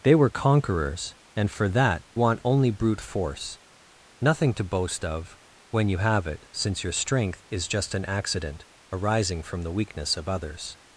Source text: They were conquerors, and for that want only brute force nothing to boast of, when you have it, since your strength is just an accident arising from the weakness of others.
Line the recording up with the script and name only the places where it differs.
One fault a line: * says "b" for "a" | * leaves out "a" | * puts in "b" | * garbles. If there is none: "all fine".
all fine